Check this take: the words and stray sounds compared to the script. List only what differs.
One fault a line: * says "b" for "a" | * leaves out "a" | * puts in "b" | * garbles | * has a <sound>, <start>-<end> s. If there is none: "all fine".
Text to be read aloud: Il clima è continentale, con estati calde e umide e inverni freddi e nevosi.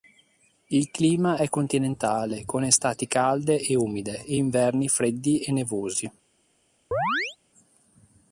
* has a chirp, 6.9-7.4 s